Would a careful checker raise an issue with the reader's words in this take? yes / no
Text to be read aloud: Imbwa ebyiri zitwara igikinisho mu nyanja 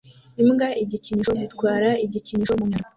yes